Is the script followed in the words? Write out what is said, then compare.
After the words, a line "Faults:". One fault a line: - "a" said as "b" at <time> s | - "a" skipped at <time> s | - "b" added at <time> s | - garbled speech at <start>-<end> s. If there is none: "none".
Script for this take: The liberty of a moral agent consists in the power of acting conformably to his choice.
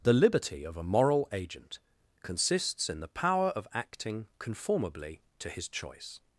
The liberty of a moral agent consists in the power of acting conformably to his choice.
Faults:
none